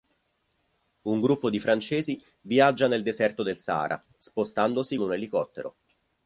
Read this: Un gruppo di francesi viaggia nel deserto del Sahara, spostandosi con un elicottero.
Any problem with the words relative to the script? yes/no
yes